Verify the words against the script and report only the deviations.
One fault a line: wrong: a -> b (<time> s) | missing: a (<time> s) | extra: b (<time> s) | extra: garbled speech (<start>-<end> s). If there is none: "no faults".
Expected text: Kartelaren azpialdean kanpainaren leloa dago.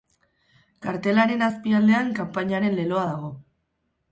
no faults